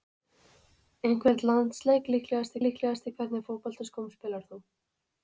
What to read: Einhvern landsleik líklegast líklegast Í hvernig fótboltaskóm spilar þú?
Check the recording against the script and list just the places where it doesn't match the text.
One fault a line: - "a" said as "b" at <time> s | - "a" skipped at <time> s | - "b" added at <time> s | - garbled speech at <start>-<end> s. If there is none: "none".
none